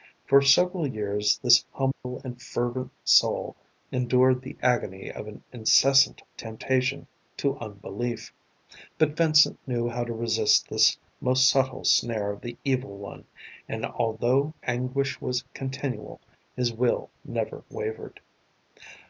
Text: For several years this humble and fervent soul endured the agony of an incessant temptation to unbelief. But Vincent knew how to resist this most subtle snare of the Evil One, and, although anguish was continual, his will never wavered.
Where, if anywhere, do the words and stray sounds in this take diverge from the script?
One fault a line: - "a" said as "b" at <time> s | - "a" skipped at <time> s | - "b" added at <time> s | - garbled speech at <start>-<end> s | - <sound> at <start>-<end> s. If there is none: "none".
- dropout at 1.9-2.0 s